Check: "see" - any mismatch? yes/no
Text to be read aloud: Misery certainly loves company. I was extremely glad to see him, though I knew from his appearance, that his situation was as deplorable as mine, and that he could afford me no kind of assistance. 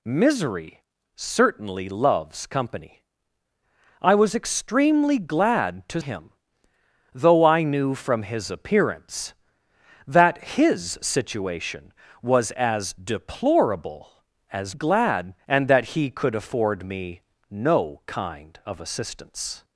yes